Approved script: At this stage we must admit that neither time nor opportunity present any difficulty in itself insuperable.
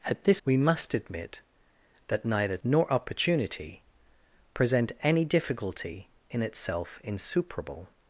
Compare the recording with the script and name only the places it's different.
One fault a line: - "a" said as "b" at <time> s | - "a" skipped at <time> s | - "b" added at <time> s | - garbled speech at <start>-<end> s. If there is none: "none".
- "stage" skipped at 0.4 s
- "time" skipped at 2.6 s